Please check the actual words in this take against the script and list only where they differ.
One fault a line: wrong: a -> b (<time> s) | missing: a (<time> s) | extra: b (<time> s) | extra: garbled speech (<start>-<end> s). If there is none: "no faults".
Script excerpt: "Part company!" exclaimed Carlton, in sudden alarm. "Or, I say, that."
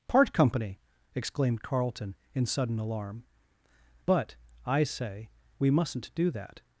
wrong: Or -> But (4.0 s)
extra: we mustn't do (5.6 s)